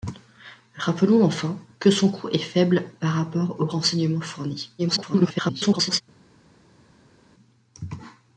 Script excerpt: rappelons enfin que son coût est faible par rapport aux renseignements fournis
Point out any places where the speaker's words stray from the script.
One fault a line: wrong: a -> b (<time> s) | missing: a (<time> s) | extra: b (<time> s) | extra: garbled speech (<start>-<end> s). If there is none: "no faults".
extra: garbled speech (4.8-6.0 s)